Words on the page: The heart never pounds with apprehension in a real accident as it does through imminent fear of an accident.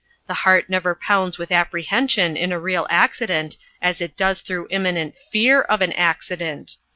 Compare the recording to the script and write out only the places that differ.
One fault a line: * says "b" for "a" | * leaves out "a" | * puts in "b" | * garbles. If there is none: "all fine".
all fine